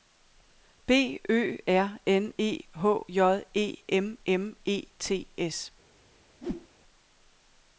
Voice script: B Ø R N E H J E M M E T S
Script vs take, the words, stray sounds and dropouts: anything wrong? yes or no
yes